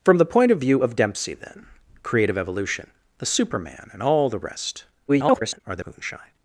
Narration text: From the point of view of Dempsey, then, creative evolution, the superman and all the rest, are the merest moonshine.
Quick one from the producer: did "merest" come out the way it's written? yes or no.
no